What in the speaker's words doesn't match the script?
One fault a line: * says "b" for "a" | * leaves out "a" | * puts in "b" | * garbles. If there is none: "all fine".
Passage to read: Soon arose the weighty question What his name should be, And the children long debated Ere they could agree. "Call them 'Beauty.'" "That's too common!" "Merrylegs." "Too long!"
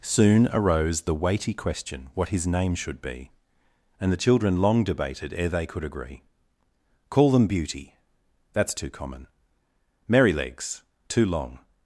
all fine